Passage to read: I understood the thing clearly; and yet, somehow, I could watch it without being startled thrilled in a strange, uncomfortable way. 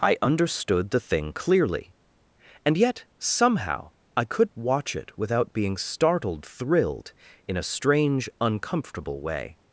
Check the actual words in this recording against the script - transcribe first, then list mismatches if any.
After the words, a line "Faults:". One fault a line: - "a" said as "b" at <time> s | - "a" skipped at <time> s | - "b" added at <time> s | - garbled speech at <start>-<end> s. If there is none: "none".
I understood the thing clearly; and yet, somehow, I could watch it without being startled thrilled in a strange, uncomfortable way.
Faults:
none